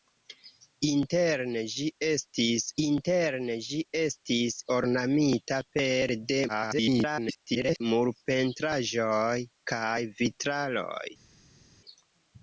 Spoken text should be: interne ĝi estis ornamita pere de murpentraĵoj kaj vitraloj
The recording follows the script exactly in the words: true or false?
false